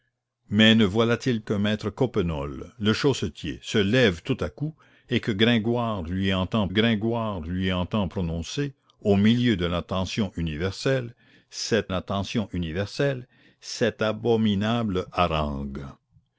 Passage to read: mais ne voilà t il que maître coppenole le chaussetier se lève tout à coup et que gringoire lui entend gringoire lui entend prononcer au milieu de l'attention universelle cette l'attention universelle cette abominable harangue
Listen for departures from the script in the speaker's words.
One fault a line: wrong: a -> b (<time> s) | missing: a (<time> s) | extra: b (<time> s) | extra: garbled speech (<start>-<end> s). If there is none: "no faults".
no faults